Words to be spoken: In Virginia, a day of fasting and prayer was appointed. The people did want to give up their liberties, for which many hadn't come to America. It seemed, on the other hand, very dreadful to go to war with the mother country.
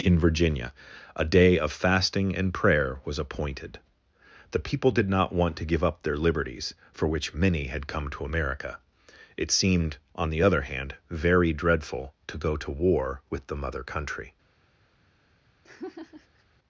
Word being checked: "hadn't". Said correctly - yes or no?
no